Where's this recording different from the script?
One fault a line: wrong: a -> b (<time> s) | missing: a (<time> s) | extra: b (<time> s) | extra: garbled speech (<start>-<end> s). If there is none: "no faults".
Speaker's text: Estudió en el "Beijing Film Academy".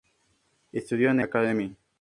missing: el Beijing Film (1.2 s)